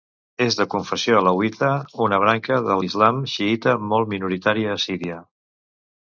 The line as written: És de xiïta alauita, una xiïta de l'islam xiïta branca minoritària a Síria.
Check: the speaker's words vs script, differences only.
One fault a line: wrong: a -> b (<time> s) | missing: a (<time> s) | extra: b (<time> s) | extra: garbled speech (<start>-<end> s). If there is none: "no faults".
wrong: xiïta -> confessió (0.7 s)
wrong: xiïta -> branca (2.2 s)
wrong: branca -> molt (3.9 s)